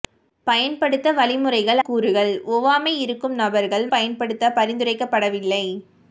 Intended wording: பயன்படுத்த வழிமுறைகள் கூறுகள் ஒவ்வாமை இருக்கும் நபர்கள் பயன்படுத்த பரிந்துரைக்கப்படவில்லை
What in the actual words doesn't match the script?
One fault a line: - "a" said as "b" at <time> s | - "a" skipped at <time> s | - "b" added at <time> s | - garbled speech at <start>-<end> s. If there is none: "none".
none